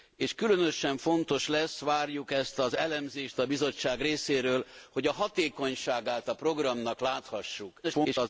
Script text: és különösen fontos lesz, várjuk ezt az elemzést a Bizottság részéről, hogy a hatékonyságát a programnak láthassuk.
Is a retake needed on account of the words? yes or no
yes